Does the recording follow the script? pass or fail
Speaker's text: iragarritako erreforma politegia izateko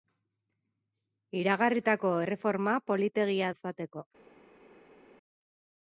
pass